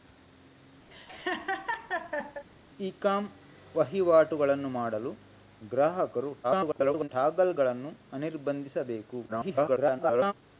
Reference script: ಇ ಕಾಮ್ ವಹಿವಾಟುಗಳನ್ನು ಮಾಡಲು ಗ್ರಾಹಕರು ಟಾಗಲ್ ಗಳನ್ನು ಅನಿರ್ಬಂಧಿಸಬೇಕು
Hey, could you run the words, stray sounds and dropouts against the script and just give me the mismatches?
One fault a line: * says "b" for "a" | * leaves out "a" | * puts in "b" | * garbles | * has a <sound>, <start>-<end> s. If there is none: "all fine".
* has a laugh, 0.9-2.4 s
* garbles
* garbles